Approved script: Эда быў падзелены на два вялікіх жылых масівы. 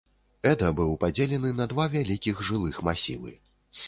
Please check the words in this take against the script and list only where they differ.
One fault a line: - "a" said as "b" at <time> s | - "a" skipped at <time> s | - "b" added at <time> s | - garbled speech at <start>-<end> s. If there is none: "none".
none